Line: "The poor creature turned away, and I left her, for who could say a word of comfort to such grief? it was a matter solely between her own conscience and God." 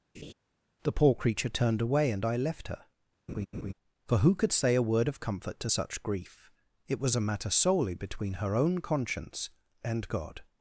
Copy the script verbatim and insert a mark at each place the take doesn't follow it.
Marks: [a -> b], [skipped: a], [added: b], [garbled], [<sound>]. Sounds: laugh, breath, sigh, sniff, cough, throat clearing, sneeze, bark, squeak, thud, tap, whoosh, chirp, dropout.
[laugh] "The poor creature turned away, and I left her, [laugh] for who could say a word of comfort to such grief? it was a matter solely between her own conscience and God."